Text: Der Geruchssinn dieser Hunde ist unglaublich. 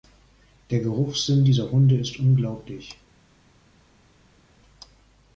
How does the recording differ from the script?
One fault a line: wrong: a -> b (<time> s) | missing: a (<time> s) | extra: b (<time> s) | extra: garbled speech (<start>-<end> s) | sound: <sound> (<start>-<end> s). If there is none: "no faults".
no faults